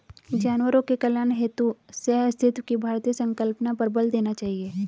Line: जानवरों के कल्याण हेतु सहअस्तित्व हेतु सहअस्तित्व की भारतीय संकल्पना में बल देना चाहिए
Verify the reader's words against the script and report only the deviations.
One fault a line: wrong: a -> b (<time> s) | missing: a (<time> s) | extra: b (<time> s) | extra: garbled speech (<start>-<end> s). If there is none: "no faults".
missing: हेतु सहअस्तित्व (2.6 s)
wrong: में -> पर (3.7 s)